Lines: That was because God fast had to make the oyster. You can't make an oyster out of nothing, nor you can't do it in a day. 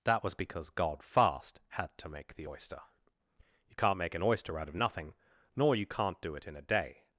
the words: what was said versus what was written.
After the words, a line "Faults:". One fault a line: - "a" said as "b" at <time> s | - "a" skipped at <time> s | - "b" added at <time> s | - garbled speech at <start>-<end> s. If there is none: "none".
That was because God fast had to make the oyster. You can't make an oyster out of nothing, nor you can't do it in a day.
Faults:
none